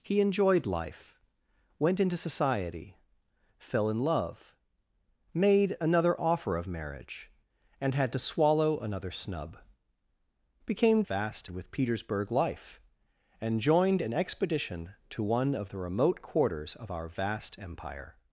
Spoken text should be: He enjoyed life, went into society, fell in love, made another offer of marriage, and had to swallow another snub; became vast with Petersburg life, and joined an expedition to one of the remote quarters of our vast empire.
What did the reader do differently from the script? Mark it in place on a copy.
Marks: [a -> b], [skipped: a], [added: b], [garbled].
He enjoyed life, went into society, fell in love, made another offer of marriage, and had to swallow another snub; became vast with Petersburg life, and joined an expedition to one of the remote quarters of our vast empire.